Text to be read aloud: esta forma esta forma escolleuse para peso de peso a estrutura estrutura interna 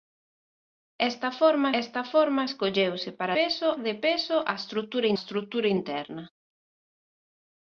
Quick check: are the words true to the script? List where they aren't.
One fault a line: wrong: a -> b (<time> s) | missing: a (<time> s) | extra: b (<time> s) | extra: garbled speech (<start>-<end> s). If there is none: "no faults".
no faults